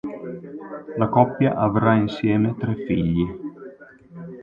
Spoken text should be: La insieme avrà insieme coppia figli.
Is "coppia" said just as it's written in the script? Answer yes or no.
no